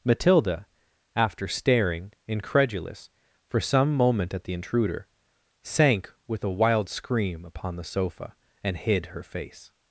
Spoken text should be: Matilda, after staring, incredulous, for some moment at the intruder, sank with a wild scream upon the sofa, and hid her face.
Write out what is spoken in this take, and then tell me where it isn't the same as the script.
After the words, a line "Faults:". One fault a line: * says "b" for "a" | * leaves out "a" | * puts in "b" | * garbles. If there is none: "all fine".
Matilda, after staring, incredulous, for some moment at the intruder, sank with a wild scream upon the sofa, and hid her face.
Faults:
all fine